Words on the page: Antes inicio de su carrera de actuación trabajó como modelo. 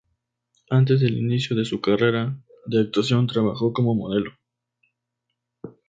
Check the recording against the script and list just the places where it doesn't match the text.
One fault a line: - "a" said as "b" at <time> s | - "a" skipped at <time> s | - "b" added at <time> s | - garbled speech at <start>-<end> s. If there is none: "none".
- "del" added at 1.0 s